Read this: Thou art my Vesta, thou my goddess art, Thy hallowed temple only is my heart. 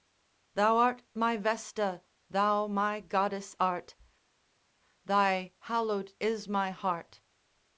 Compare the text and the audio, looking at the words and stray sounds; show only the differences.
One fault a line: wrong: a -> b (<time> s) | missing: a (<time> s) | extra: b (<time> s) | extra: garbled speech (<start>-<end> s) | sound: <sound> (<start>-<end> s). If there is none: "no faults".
missing: temple only (6.1 s)